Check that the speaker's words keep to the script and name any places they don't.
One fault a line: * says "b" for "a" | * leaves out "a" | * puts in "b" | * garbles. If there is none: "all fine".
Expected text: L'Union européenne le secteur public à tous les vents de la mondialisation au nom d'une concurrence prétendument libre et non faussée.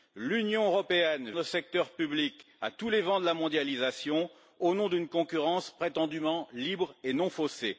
all fine